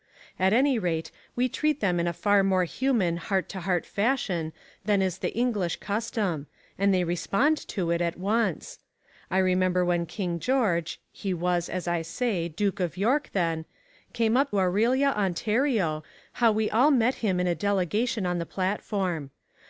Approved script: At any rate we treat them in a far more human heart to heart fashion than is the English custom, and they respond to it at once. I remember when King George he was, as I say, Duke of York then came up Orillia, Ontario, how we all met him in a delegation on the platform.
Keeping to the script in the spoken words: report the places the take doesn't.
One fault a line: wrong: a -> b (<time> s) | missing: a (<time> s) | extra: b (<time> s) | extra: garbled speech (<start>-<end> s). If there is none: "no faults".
no faults